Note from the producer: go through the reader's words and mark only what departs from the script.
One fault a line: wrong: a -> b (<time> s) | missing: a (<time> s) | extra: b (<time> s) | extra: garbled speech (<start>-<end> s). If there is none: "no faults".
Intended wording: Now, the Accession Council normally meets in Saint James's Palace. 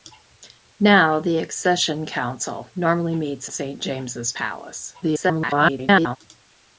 missing: in (3.5 s)
extra: garbled speech (5.0-6.2 s)